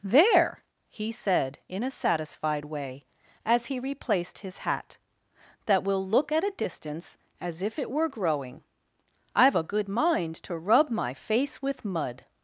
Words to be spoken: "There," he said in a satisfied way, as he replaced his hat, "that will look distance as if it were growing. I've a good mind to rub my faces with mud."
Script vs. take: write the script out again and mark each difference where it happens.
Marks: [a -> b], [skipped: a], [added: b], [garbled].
"There," he said in a satisfied way, as he replaced his hat, "that will look [added: at a] distance as if it were growing. I've a good mind to rub my [faces -> face] with mud."